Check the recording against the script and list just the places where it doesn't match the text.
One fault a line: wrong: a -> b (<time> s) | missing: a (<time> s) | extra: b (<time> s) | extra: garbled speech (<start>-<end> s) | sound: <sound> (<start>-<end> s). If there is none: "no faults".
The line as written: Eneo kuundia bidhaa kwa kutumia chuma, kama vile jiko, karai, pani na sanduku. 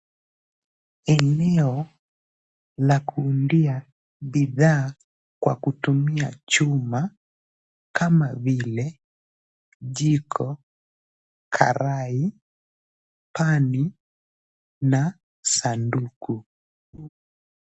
extra: la (2.8 s)
sound: laugh (16.9-17.1 s)